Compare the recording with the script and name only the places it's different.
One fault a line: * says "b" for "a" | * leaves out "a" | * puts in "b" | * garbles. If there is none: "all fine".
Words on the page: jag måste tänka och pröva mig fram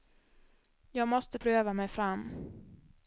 * leaves out "tänka och"